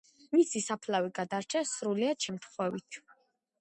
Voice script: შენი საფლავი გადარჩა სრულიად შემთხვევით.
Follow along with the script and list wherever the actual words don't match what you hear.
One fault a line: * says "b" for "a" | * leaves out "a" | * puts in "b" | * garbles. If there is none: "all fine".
* says "მისი" for "შენი"